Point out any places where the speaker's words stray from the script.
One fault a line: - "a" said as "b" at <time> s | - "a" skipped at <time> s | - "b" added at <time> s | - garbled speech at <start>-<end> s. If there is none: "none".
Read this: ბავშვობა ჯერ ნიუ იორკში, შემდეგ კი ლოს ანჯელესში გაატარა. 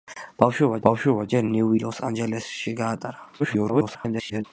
- "ბავშვობა" added at 0.9 s
- "იორკში შემდეგ კი" skipped at 1.7 s
- garbled speech at 3.4-4.4 s